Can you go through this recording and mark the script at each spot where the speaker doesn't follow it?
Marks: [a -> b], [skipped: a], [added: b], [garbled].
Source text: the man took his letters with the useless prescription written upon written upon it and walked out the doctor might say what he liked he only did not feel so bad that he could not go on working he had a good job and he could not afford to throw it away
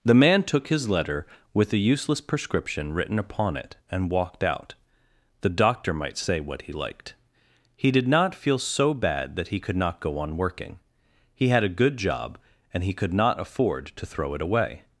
the man took his [letters -> letter] with the useless prescription written upon [skipped: written upon] it and walked out the doctor might say what he liked he [skipped: only] did not feel so bad that he could not go on working he had a good job and he could not afford to throw it away